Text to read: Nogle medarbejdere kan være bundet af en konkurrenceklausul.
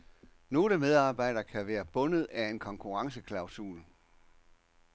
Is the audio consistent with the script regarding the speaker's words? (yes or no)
yes